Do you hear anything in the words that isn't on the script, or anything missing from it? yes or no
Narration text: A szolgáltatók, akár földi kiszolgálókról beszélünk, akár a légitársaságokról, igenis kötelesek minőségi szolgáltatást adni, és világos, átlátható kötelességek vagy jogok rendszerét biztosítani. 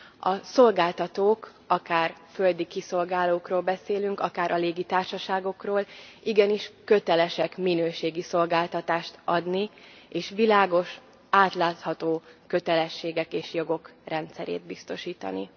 yes